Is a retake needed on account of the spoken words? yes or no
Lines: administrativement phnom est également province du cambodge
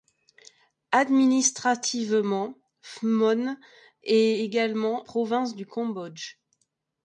no